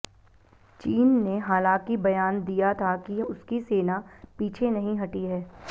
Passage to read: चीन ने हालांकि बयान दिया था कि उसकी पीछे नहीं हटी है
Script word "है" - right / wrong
right